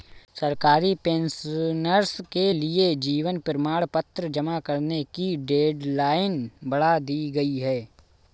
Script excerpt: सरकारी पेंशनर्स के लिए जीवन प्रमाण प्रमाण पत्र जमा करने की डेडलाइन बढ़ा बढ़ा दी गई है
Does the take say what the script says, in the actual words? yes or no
no